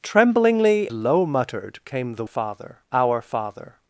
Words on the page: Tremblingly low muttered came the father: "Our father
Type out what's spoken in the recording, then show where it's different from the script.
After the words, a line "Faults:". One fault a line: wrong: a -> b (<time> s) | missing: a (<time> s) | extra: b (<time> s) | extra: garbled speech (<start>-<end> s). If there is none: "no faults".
Tremblingly low muttered came the father: "Our father
Faults:
no faults